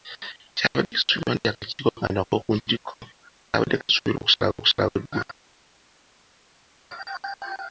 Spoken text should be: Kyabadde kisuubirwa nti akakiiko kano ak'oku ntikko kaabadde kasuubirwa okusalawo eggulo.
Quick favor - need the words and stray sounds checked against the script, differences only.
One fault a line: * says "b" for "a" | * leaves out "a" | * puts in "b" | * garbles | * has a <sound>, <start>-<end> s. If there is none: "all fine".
* puts in "okusalawo"